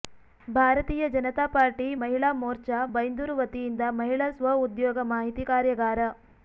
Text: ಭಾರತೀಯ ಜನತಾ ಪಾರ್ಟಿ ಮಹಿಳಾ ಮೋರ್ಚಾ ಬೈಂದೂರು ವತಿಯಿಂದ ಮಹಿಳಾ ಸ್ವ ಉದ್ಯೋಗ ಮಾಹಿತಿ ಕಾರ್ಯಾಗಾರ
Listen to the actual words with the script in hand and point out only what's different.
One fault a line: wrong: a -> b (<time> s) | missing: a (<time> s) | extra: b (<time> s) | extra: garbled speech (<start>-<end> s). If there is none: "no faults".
no faults